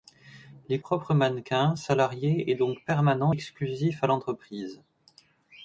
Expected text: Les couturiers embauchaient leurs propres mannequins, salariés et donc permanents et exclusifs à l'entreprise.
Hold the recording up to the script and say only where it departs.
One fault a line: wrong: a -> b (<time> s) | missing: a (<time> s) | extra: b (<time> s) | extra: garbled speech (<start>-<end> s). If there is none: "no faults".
missing: couturiers embauchaient leurs (0.8 s)
missing: et (3.3 s)